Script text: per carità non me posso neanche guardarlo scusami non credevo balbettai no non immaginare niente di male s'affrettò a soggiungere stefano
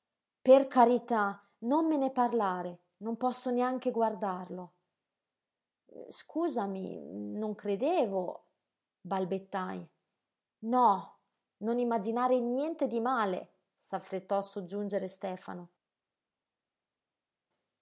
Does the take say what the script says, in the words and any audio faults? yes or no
no